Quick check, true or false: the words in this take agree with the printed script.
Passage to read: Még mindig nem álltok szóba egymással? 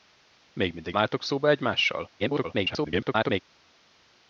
false